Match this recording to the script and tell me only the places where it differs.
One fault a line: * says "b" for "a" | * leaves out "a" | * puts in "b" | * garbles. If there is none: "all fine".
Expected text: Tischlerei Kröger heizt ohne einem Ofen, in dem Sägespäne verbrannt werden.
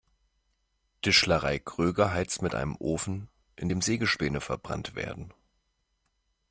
* says "mit" for "ohne"